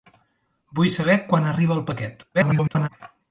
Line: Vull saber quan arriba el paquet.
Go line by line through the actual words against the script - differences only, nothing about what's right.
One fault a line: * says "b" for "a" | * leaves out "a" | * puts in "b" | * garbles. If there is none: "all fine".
* garbles